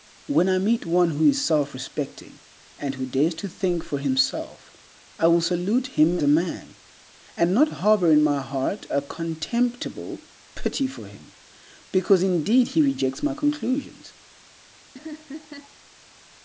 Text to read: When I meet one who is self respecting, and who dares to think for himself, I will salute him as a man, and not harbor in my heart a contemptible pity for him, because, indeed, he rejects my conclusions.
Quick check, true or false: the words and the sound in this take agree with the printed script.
false